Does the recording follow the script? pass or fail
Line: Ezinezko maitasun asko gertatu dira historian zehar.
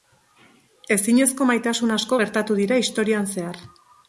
pass